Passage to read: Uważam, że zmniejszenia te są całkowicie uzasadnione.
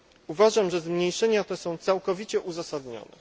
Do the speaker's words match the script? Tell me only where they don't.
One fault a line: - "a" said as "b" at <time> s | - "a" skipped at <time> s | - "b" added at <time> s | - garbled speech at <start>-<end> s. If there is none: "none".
none